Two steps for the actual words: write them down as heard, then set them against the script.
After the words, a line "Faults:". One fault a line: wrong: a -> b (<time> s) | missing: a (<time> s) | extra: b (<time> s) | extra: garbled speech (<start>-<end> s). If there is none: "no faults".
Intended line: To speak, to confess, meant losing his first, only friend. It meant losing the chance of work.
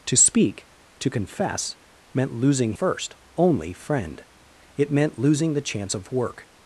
To speak, to confess, meant losing first, only friend. It meant losing the chance of work.
Faults:
missing: his (2.7 s)